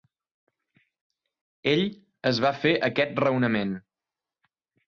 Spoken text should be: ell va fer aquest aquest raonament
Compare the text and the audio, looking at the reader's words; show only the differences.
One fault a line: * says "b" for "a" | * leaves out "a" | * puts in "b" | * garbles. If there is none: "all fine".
* puts in "es"
* leaves out "aquest"